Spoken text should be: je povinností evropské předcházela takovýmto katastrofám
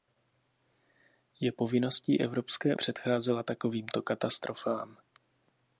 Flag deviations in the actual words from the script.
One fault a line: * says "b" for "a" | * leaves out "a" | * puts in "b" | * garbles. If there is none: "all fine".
all fine